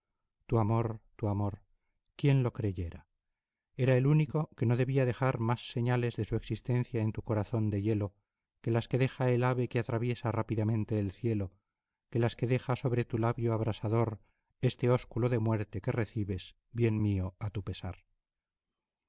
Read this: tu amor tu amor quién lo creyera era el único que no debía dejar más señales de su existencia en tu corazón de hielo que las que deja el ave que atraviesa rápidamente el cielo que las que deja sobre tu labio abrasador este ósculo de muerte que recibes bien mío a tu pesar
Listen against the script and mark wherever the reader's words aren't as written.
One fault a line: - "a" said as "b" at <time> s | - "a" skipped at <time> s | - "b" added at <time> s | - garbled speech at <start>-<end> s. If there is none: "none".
none